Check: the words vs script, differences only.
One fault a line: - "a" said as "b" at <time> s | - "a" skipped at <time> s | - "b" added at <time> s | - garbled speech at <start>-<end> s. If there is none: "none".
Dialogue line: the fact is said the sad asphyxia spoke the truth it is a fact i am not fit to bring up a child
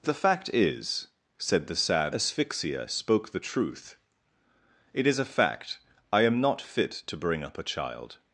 none